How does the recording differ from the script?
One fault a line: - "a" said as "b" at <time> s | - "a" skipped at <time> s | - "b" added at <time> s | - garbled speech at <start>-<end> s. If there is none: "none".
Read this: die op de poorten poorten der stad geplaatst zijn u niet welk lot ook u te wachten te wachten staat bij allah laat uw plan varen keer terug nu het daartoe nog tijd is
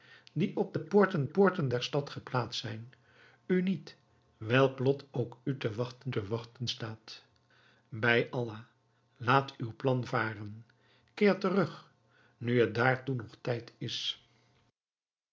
none